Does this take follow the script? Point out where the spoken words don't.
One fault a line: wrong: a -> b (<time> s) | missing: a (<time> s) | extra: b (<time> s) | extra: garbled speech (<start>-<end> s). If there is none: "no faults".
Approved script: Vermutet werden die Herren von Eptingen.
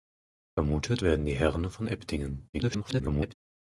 extra: garbled speech (2.5-3.3 s)